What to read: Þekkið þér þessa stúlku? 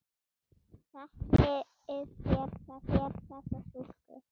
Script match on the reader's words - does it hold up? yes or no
no